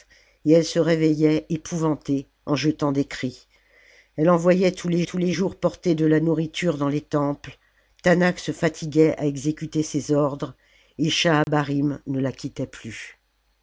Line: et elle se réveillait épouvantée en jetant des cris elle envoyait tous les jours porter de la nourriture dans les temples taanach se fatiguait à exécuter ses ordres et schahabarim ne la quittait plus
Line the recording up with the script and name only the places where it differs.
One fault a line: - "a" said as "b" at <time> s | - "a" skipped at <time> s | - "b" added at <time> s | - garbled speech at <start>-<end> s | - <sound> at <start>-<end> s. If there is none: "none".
- "tous les" added at 5.0 s
- dropout at 11.4-11.5 s